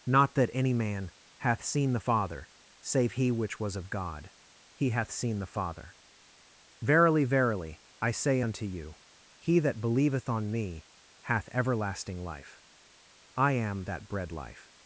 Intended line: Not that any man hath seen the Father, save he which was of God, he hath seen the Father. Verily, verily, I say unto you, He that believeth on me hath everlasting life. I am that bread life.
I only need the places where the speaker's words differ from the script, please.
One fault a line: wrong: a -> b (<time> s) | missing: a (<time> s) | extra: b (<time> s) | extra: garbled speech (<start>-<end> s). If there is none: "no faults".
no faults